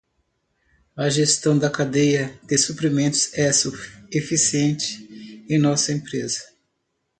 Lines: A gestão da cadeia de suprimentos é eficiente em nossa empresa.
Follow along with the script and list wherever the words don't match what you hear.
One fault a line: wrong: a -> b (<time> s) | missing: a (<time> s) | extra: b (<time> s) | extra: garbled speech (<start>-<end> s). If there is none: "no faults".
no faults